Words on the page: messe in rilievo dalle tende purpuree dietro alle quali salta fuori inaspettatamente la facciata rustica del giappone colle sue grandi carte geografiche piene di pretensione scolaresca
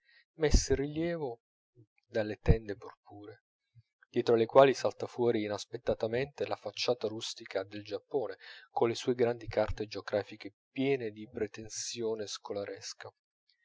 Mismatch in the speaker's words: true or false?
false